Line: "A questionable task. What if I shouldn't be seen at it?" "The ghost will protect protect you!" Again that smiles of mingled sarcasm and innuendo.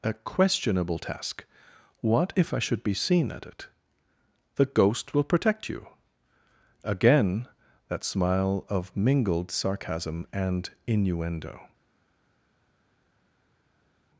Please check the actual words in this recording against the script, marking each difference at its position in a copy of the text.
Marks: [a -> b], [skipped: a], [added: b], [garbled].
"A questionable task. What if I [shouldn't -> should] be seen at it?" "The ghost will protect [skipped: protect] you!" Again that [smiles -> smile] of mingled sarcasm and innuendo.